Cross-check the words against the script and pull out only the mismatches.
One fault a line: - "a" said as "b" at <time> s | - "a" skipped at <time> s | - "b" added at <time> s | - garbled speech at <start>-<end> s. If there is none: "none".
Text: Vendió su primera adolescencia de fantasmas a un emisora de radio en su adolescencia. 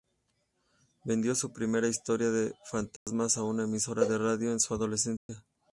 - "adolescencia" said as "historia" at 1.9 s
- "un" said as "una" at 3.4 s